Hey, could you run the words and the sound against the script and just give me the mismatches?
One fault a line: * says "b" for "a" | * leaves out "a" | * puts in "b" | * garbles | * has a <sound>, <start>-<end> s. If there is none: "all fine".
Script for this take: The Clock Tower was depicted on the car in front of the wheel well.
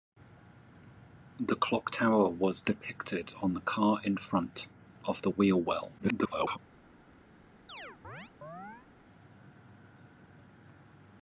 * garbles
* has a chirp, 7.7-8.9 s